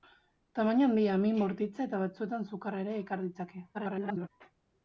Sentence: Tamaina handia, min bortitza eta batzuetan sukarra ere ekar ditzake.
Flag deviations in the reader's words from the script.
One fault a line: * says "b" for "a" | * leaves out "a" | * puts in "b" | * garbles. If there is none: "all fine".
* garbles